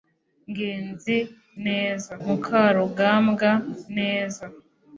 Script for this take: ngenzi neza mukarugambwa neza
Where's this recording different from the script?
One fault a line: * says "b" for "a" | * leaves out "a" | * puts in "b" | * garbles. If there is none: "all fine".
all fine